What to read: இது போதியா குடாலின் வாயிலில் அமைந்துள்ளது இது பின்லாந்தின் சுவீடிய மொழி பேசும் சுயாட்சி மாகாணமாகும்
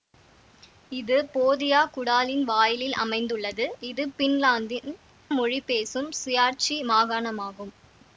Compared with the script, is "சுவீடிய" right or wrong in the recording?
wrong